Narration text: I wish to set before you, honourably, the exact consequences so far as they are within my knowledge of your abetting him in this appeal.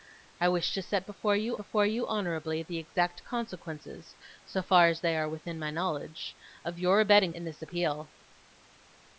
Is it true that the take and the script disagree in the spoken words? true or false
true